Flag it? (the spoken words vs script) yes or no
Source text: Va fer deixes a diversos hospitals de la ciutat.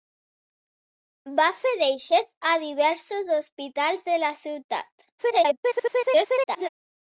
yes